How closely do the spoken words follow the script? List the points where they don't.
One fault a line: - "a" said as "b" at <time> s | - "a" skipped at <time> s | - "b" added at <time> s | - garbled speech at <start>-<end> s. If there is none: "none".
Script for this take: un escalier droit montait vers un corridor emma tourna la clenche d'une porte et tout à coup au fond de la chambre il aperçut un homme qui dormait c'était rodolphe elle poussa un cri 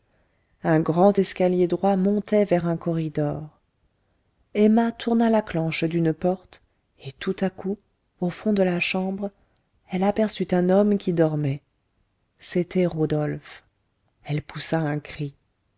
- "grand" added at 0.8 s
- "il" said as "elle" at 9.9 s